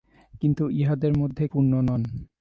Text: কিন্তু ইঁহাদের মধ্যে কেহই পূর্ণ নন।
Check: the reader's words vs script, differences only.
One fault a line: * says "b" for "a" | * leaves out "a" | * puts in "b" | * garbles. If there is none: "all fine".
* leaves out "কেহই"